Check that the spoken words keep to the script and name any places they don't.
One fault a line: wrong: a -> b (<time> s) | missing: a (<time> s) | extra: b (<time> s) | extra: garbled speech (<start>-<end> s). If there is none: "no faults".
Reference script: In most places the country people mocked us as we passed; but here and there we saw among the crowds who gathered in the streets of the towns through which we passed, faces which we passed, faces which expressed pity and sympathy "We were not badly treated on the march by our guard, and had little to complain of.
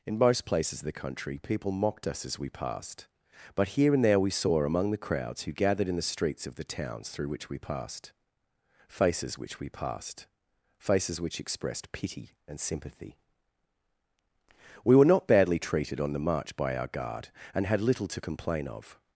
extra: of (0.8 s)